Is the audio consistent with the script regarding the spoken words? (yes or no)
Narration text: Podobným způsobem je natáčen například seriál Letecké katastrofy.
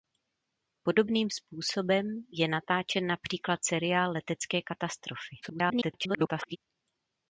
no